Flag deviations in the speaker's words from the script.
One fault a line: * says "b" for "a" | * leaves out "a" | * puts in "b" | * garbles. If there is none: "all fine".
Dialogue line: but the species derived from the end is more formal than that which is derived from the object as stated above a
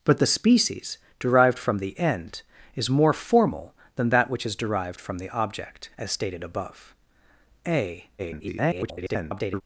* garbles